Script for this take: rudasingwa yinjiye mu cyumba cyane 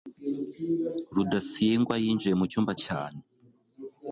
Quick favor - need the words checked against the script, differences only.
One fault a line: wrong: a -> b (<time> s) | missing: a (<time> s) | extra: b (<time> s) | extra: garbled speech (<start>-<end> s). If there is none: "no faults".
no faults